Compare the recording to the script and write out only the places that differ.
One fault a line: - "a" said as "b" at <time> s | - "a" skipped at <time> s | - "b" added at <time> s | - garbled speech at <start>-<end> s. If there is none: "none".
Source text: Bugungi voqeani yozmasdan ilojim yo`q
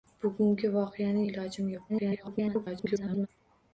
- "yozmasdan" skipped at 1.2 s
- garbled speech at 1.9-3.3 s